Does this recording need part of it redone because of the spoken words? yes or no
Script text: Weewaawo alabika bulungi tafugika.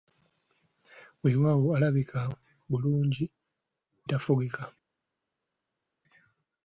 no